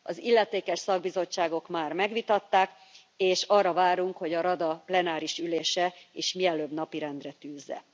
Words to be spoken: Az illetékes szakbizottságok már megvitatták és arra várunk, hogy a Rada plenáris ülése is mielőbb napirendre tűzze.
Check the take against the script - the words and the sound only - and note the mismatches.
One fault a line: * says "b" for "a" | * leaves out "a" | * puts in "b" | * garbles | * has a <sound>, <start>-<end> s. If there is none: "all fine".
all fine